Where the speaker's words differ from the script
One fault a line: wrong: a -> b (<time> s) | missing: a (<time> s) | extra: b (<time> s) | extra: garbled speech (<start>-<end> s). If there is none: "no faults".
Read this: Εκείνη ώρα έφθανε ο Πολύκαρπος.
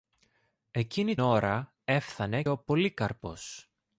no faults